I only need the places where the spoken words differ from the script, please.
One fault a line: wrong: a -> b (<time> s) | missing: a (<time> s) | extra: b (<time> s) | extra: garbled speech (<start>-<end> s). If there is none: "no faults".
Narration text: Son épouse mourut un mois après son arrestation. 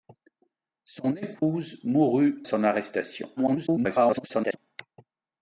missing: un mois après (2.4 s)
extra: garbled speech (3.4-4.6 s)